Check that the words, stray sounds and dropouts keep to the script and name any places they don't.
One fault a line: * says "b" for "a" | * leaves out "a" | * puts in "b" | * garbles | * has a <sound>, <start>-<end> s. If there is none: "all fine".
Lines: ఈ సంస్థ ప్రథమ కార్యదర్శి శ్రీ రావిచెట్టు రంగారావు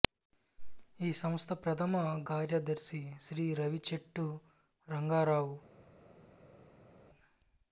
all fine